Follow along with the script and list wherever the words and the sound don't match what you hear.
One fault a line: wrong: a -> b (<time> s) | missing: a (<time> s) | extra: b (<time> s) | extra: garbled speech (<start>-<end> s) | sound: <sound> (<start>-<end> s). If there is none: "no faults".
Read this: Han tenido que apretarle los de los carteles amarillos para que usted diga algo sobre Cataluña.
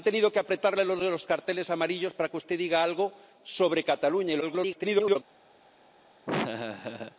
extra: garbled speech (4.4-5.2 s)
sound: laugh (6.3-7.2 s)